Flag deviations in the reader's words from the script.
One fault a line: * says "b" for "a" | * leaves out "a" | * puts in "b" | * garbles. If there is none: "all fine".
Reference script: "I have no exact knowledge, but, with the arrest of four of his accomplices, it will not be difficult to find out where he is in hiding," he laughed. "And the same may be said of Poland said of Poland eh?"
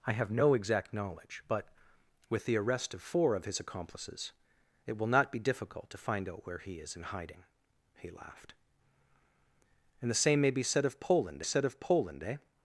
all fine